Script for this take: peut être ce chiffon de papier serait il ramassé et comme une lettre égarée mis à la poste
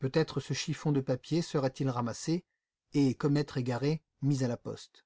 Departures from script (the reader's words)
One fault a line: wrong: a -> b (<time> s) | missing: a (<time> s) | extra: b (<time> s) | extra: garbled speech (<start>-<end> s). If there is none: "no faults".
missing: une (3.4 s)